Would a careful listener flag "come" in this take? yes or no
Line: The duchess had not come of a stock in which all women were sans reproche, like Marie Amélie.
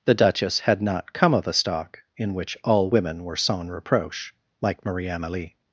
no